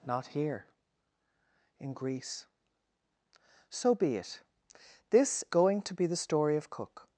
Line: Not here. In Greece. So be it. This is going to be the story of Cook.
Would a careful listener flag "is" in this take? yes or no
yes